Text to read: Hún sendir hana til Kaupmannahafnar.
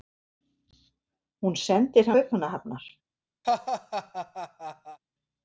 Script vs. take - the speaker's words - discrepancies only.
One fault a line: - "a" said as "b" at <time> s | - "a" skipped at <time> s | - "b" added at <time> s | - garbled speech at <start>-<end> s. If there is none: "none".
- "hana til" skipped at 2.1 s